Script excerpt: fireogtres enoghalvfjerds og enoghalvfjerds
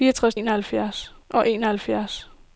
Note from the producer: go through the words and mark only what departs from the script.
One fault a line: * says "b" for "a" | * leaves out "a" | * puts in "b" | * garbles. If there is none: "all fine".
all fine